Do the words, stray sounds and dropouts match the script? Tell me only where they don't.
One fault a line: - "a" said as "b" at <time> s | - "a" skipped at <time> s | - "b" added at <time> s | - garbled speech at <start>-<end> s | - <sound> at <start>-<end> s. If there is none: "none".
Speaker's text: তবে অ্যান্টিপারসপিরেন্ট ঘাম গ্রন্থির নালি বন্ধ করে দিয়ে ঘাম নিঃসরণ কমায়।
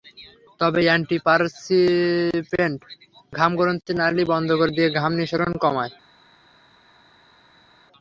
none